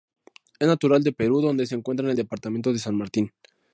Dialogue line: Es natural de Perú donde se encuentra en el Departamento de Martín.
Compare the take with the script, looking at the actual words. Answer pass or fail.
fail